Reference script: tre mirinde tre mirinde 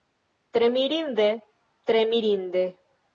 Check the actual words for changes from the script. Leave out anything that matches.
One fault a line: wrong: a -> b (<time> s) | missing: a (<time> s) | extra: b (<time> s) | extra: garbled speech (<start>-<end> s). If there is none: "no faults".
no faults